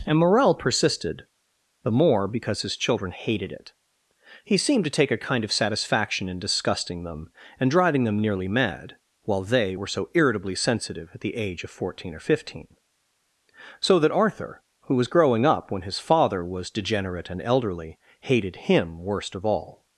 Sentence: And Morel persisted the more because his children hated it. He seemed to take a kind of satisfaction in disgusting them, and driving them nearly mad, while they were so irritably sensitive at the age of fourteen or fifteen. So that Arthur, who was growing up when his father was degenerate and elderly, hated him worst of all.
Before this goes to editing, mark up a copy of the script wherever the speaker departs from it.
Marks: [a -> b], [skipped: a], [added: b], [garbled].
And Morel persisted the more because his children hated it. He seemed to take a kind of satisfaction in disgusting them, and driving them nearly mad, while they were so irritably sensitive at the age of fourteen or fifteen. So that Arthur, who was growing up when his father was degenerate and elderly, hated him worst of all.